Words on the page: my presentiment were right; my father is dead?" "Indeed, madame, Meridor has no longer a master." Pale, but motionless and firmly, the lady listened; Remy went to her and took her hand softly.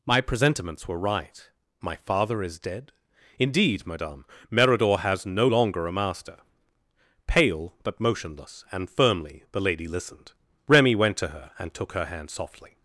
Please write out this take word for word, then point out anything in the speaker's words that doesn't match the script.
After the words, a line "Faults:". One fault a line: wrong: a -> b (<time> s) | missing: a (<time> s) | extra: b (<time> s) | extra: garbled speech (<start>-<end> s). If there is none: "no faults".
my presentiments were right; my father is dead?" "Indeed, madame, Meridor has no longer a master." Pale, but motionless and firmly, the lady listened; Remy went to her and took her hand softly.
Faults:
wrong: presentiment -> presentiments (0.2 s)